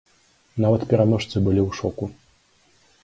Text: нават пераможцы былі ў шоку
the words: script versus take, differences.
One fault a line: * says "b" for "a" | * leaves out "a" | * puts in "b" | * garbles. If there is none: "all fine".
all fine